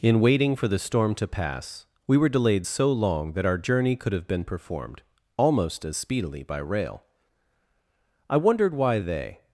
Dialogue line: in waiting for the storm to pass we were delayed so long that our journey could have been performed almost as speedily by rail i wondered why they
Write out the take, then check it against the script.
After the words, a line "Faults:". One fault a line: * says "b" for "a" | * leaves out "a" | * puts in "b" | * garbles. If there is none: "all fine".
in waiting for the storm to pass we were delayed so long that our journey could have been performed almost as speedily by rail i wondered why they
Faults:
all fine